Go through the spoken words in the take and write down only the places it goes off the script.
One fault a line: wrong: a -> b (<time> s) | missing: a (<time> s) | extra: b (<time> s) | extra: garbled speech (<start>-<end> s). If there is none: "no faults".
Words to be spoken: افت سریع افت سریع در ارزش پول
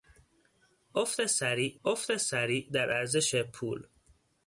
no faults